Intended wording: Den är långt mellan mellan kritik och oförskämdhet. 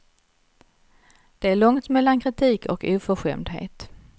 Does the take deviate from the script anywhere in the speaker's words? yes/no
yes